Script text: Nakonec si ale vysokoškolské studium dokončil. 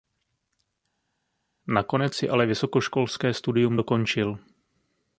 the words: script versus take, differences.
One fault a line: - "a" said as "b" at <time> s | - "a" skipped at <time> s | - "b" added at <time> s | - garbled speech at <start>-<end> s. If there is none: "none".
none